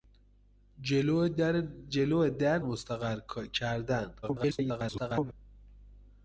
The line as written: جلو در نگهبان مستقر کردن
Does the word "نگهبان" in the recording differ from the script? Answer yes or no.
yes